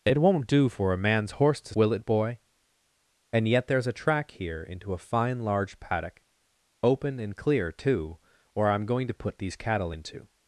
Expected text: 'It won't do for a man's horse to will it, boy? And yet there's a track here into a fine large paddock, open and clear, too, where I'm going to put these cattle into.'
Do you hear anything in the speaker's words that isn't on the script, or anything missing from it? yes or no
no